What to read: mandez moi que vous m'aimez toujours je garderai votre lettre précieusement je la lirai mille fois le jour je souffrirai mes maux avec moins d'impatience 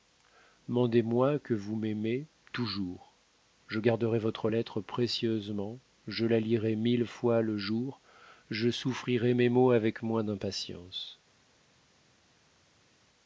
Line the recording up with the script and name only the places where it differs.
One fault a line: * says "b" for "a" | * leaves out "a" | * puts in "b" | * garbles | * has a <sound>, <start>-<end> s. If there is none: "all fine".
all fine